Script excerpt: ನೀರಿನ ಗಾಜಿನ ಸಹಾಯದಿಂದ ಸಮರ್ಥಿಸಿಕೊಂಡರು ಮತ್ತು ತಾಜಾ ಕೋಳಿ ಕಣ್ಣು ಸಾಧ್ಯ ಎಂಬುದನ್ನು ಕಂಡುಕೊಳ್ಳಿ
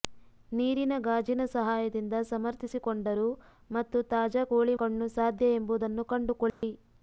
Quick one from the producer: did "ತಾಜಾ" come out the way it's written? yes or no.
yes